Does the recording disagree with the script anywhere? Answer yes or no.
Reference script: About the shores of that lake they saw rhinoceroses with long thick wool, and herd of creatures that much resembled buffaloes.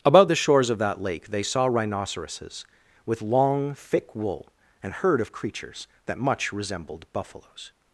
no